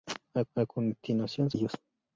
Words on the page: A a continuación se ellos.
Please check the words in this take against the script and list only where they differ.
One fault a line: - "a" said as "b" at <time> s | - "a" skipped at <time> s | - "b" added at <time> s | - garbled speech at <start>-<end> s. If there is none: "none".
none